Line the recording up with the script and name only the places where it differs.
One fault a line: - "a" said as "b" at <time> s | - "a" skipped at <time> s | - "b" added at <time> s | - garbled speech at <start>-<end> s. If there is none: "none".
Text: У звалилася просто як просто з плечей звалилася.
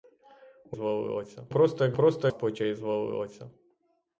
none